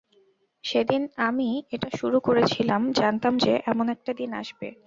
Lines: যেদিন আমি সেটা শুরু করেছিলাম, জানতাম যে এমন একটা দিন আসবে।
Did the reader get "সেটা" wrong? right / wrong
wrong